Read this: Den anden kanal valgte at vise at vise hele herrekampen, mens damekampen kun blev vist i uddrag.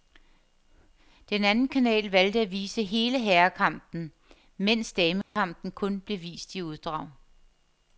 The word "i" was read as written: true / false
true